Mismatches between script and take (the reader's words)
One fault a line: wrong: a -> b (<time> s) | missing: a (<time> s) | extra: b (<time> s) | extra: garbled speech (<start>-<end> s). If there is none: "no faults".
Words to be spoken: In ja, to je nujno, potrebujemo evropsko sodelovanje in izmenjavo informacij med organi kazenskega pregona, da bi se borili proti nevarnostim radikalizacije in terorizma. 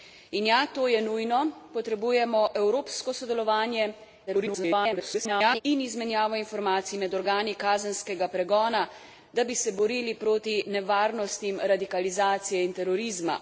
extra: garbled speech (4.3-5.6 s)